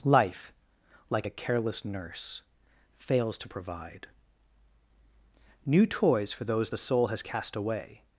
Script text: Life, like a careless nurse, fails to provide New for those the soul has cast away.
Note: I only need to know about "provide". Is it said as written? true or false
true